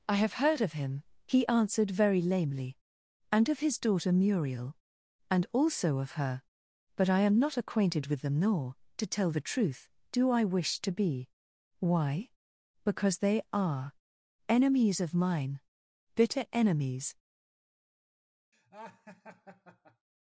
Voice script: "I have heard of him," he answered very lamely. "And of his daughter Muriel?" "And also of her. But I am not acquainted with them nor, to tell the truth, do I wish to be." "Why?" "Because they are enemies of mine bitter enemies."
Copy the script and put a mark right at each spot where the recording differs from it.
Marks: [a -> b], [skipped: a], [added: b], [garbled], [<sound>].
"I have heard of him," he answered very lamely. "And of his daughter Muriel?" "And also of her. But I am not acquainted with them nor, to tell the truth, do I wish to be." "Why?" "Because they are enemies of mine bitter enemies." [laugh]